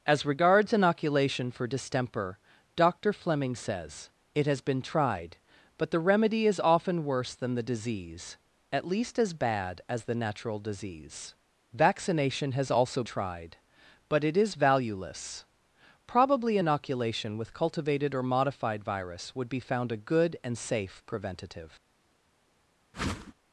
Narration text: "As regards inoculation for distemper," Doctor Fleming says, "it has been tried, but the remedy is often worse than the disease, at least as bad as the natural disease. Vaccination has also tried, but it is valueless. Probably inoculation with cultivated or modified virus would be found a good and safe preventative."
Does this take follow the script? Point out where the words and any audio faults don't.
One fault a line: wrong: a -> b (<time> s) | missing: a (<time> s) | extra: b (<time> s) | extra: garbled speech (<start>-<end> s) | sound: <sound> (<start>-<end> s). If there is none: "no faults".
sound: whoosh (22.9-23.3 s)